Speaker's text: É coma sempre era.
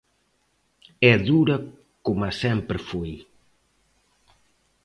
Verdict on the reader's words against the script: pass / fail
fail